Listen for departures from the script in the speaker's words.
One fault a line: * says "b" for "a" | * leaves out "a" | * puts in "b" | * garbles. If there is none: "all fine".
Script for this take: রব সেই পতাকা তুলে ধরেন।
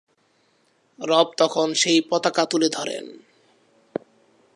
* puts in "তখন"